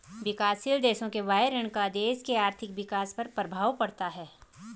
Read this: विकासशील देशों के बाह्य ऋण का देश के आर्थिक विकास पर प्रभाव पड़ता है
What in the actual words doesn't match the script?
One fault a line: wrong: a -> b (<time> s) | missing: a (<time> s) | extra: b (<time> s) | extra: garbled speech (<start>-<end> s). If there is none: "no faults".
no faults